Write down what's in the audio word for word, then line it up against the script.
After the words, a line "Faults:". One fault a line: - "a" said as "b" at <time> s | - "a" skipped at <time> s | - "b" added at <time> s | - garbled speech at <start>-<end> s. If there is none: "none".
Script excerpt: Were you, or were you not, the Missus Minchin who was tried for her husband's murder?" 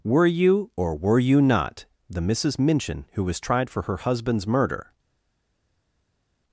Were you, or were you not, the Missus Minchin who was tried for her husband's murder?"
Faults:
none